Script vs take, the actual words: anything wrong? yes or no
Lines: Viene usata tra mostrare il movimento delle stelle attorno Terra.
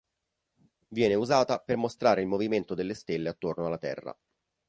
yes